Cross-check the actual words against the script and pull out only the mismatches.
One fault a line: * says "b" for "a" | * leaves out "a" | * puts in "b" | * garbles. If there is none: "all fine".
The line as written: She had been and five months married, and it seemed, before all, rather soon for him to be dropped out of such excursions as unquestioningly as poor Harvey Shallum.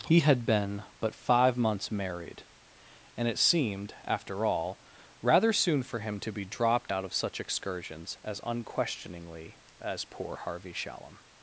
* says "He" for "She"
* says "but" for "and"
* says "after" for "before"